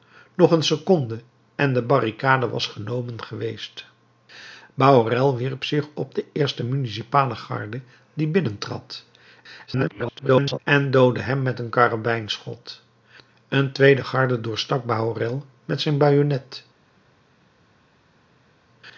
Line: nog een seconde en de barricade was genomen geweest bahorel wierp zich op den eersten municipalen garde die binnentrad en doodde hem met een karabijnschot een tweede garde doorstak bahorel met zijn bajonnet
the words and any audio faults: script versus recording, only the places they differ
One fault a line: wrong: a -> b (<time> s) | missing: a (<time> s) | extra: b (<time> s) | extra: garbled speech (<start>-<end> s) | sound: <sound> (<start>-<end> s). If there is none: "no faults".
extra: garbled speech (9.7-10.6 s)